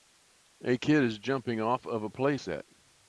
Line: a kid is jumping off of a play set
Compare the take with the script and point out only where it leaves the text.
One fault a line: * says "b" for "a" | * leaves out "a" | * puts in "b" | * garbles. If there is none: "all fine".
all fine